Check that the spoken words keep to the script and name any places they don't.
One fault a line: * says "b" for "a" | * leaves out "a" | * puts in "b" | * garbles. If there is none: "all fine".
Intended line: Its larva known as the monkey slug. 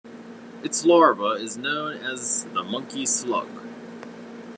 * puts in "is"